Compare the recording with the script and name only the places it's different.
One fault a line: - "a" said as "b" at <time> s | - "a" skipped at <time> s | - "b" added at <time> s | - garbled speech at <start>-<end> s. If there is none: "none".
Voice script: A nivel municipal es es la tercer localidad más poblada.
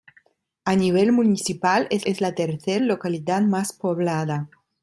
none